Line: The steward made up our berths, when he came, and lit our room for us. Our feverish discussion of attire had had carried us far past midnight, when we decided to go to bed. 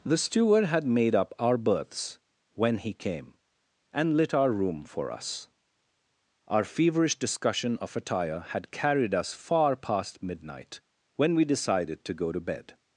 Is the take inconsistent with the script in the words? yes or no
yes